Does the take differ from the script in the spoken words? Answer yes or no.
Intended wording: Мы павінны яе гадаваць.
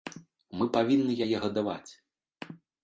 no